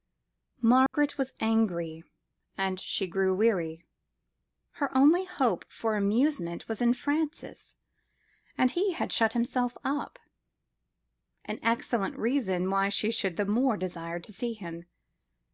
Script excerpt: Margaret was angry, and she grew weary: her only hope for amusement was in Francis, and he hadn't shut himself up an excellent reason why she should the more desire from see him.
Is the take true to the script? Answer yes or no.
no